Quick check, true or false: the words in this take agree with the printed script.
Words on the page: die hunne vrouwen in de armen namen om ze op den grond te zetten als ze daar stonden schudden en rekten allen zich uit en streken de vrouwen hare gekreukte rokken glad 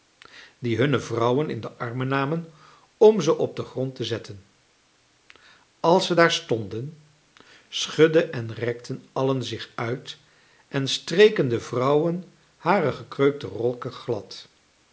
true